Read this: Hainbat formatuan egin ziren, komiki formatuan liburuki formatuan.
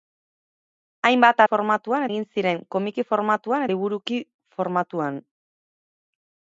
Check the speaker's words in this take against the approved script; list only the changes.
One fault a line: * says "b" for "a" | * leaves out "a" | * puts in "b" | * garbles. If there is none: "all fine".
all fine